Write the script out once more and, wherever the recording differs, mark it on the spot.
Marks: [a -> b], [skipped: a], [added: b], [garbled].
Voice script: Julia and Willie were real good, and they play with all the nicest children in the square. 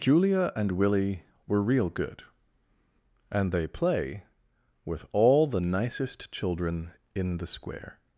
Julia and Willie were real good, and they play with all the nicest children in the square.